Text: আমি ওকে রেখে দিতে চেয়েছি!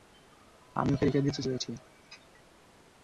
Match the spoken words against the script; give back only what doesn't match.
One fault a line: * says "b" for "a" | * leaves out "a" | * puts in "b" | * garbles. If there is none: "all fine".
all fine